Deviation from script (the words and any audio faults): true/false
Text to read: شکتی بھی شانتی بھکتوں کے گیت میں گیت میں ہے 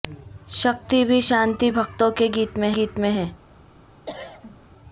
true